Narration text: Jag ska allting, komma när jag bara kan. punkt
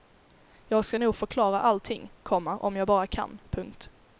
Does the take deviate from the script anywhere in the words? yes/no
yes